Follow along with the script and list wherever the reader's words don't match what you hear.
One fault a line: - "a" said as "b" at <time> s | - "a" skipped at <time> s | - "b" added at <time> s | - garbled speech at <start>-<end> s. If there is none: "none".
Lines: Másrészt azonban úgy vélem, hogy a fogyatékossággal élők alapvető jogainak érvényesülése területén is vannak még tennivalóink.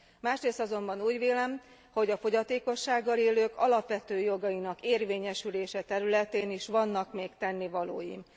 none